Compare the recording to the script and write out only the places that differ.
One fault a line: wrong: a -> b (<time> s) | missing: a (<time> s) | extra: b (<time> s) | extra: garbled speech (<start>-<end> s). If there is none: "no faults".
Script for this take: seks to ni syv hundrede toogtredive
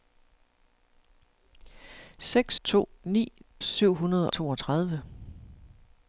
no faults